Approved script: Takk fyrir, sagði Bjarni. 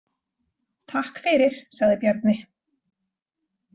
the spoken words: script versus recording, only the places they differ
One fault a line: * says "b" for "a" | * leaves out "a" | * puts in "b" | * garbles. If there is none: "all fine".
all fine